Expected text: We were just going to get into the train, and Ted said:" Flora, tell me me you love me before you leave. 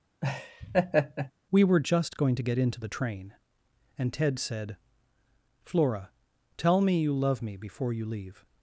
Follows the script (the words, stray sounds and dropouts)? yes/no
no